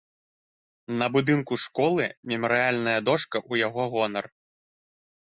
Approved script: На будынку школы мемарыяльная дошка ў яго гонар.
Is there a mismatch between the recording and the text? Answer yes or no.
no